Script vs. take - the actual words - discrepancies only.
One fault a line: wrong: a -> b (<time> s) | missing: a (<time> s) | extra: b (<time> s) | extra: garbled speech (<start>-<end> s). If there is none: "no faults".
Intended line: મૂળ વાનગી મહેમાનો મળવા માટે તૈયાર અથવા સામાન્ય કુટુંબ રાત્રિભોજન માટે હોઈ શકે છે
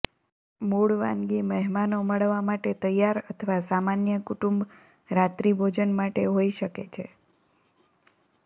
no faults